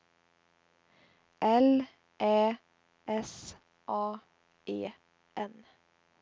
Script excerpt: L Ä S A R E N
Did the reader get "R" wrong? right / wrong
wrong